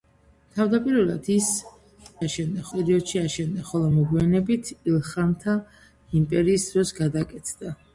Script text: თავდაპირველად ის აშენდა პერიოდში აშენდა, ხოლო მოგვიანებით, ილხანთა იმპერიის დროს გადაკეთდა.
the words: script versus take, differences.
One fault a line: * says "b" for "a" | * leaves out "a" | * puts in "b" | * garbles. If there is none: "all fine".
all fine